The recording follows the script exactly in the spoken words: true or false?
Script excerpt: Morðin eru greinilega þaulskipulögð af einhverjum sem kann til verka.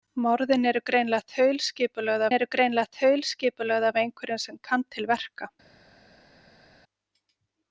false